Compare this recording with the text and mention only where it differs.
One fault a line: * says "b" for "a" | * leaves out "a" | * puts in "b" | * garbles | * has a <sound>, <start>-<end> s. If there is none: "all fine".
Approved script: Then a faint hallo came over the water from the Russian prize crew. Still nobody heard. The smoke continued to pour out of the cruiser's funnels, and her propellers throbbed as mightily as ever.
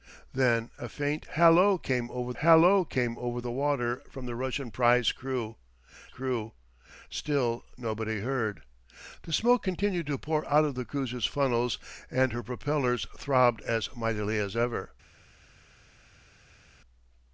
* puts in "hallo came over"
* puts in "crew"